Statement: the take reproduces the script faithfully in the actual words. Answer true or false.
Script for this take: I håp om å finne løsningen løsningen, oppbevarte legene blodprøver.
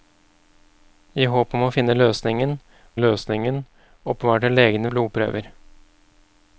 true